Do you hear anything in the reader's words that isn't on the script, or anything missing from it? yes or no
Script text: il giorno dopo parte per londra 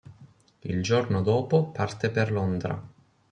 no